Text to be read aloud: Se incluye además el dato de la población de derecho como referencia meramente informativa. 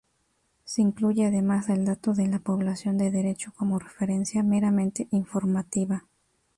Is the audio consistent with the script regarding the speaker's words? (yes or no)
yes